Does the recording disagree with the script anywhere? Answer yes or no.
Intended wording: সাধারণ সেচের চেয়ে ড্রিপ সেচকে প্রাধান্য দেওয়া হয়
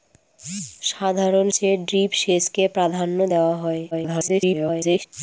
yes